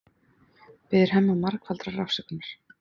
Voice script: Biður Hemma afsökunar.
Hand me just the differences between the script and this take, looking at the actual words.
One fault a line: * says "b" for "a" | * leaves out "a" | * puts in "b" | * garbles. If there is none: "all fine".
* puts in "margfaldrar"